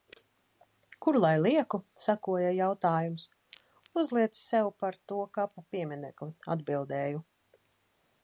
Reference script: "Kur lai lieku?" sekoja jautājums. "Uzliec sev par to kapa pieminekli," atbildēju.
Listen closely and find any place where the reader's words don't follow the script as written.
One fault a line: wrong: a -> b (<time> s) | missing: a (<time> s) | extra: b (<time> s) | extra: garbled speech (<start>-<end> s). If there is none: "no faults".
no faults